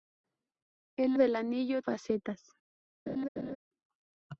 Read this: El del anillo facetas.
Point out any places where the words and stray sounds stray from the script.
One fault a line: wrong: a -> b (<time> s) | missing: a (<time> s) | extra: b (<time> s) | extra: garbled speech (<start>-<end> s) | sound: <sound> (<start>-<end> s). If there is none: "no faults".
sound: laugh (3.1-3.6 s)